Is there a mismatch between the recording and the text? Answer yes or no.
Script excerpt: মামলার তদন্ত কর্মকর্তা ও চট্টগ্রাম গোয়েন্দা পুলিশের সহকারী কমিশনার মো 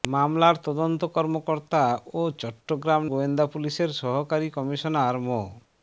no